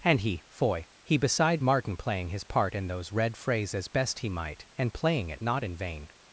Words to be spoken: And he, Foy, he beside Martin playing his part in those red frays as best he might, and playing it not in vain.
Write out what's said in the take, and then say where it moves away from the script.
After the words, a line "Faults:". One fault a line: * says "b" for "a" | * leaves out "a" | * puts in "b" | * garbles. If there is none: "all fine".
And he, Foy, he beside Martin playing his part in those red frays as best he might, and playing it not in vain.
Faults:
all fine